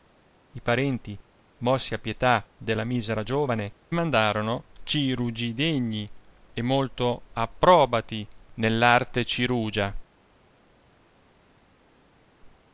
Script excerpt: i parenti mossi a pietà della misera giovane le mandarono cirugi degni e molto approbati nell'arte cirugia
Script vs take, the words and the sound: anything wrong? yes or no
yes